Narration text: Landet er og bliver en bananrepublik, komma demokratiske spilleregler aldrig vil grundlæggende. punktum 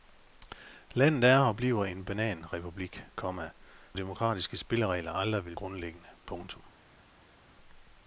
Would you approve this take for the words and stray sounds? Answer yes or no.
yes